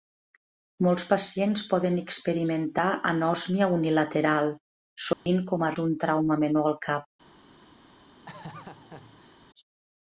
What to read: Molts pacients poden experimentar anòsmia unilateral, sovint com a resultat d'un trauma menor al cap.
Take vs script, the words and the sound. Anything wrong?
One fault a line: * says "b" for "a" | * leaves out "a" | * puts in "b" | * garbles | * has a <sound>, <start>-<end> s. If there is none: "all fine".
* has a dropout, 5.1-5.3 s
* leaves out "resultat"
* has a laugh, 8.3-9.4 s